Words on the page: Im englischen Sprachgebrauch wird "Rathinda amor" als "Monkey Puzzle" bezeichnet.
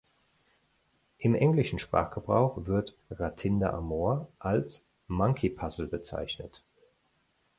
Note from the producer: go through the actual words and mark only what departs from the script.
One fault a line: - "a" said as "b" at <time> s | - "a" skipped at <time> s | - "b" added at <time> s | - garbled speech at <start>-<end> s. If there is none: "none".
none